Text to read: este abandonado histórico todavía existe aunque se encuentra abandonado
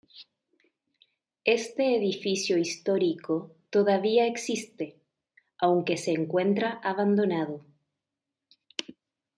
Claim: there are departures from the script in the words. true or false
true